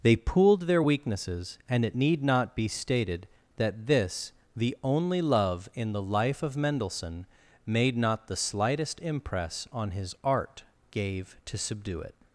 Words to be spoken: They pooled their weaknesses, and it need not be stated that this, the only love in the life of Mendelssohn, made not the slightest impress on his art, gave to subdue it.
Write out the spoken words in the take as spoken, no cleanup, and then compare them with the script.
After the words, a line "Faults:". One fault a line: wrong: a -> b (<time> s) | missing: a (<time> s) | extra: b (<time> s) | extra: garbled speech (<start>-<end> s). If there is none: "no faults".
They pooled their weaknesses, and it need not be stated that this, the only love in the life of Mendelssohn, made not the slightest impress on his art, gave to subdue it.
Faults:
no faults